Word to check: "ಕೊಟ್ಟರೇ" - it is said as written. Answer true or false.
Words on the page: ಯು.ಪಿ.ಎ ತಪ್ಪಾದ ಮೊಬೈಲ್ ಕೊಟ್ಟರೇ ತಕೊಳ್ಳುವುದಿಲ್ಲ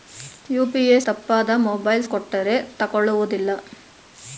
true